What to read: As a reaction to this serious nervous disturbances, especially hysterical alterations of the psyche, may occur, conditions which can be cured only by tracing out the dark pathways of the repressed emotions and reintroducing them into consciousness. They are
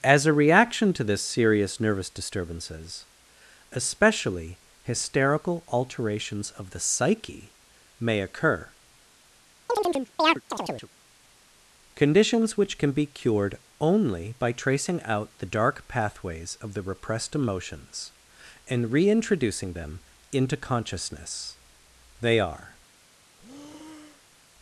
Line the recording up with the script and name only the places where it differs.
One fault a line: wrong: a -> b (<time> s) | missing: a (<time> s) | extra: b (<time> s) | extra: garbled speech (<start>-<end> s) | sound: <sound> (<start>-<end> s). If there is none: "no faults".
sound: chirp (9.7-10.9 s)
sound: breath (23.4-24.4 s)